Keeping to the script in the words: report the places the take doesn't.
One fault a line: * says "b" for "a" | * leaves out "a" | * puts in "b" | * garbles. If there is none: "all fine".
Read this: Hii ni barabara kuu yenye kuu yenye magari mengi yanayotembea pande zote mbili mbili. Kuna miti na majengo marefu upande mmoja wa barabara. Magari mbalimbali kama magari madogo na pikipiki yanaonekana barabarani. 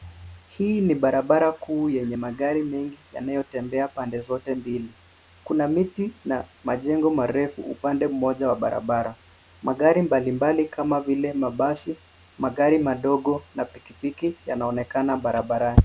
* leaves out "kuu yenye"
* leaves out "mbili"
* puts in "vile mabasi"